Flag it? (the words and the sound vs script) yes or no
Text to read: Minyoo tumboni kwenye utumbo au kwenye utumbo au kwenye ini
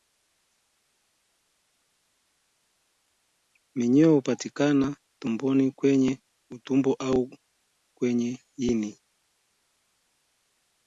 yes